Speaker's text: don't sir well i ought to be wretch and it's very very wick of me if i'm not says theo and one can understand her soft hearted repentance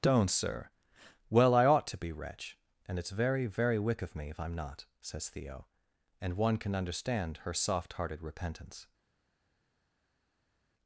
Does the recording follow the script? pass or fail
pass